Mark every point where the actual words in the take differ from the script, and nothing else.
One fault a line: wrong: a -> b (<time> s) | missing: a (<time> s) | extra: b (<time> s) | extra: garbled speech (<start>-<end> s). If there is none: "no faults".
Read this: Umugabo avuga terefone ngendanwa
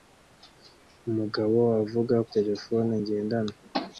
no faults